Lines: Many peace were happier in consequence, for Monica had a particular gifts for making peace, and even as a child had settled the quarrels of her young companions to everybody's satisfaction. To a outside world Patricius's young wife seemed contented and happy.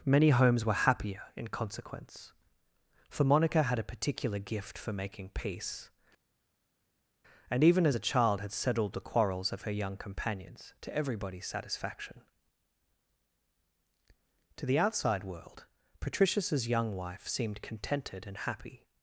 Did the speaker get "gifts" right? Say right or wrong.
wrong